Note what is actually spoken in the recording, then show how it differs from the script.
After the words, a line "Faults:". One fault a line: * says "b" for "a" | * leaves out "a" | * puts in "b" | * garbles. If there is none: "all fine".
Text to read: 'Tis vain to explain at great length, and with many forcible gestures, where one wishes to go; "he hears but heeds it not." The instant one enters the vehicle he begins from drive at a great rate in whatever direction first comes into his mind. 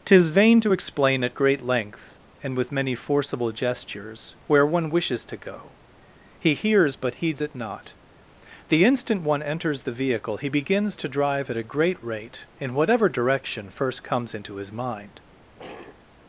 'Tis vain to explain at great length, and with many forcible gestures, where one wishes to go; "he hears but heeds it not." The instant one enters the vehicle he begins to drive at a great rate in whatever direction first comes into his mind.
Faults:
* says "to" for "from"